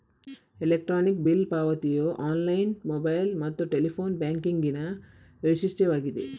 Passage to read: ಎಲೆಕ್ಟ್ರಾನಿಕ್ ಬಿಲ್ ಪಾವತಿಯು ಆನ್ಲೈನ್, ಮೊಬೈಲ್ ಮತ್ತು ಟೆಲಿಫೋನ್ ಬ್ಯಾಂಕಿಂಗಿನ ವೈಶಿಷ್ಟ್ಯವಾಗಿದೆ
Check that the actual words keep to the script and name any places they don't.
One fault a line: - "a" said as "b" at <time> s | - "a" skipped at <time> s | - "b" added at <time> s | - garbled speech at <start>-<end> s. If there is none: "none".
none